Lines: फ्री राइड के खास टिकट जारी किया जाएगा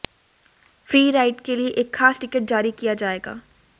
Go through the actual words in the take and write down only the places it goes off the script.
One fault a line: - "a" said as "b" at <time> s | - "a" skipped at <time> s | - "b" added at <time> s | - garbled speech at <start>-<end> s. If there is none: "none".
- "लिए एक" added at 1.6 s